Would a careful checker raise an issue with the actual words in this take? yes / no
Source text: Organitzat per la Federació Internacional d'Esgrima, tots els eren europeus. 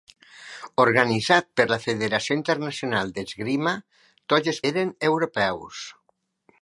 no